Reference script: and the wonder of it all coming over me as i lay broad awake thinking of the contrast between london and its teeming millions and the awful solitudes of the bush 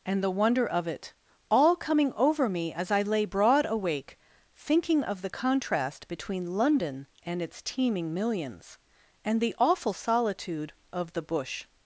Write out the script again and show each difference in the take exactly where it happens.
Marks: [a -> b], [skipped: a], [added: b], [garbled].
and the wonder of it all coming over me as i lay broad awake thinking of the contrast between london and its teeming millions and the awful [solitudes -> solitude] of the bush